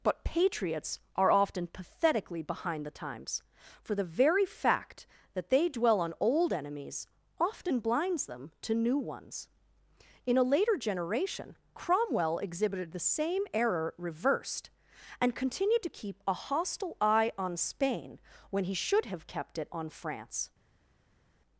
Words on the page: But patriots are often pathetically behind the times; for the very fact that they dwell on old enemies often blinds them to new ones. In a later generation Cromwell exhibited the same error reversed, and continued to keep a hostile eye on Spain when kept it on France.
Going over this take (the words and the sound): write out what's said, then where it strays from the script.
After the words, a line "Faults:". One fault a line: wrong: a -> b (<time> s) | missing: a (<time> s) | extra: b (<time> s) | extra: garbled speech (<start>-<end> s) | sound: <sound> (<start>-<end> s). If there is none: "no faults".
But patriots are often pathetically behind the times; for the very fact that they dwell on old enemies often blinds them to new ones. In a later generation Cromwell exhibited the same error reversed, and continued to keep a hostile eye on Spain when he should have kept it on France.
Faults:
extra: he should have (18.6 s)